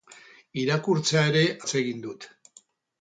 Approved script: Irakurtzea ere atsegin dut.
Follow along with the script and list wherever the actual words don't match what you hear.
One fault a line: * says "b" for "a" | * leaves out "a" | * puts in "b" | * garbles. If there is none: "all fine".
all fine